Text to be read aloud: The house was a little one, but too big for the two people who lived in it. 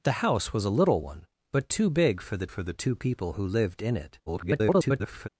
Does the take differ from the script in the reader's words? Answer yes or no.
yes